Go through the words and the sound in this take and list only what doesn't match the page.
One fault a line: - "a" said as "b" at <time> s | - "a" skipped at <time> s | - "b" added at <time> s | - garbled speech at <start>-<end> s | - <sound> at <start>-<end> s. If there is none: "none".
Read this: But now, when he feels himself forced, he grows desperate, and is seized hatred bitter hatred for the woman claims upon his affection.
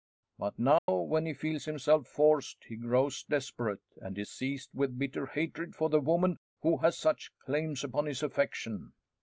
- dropout at 0.8-0.9 s
- "hatred" said as "with" at 4.7 s
- "who has such" added at 6.6 s